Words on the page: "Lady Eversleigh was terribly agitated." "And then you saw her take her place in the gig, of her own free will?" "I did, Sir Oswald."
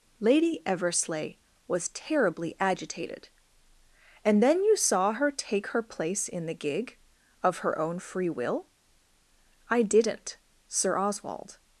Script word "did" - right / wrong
wrong